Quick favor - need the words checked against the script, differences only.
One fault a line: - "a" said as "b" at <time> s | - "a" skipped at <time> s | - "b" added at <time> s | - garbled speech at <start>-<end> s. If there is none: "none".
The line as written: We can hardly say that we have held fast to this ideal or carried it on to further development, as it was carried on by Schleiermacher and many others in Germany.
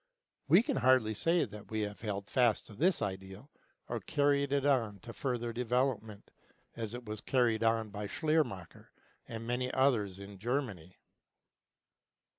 none